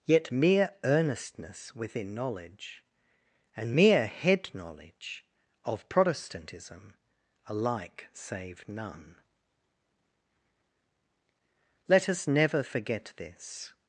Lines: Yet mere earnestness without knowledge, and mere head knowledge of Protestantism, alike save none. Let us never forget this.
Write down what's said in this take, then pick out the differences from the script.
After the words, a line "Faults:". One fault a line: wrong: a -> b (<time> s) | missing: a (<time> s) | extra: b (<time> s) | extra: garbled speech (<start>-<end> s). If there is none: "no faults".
Yet mere earnestness within knowledge, and mere head knowledge of Protestantism, alike save none. Let us never forget this.
Faults:
wrong: without -> within (1.8 s)